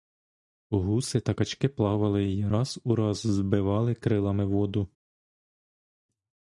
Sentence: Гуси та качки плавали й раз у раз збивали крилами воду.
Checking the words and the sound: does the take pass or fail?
pass